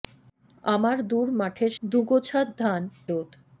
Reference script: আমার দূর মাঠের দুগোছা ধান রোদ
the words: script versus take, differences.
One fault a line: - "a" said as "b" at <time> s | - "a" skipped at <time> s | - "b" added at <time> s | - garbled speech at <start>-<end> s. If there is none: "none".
none